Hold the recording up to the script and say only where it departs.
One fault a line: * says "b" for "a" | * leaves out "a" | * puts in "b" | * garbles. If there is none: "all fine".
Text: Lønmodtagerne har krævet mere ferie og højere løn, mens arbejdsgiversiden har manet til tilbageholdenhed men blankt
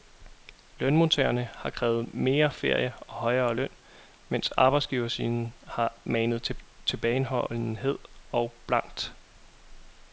* says "og" for "men"